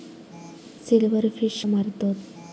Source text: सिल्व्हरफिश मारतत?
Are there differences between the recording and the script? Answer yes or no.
no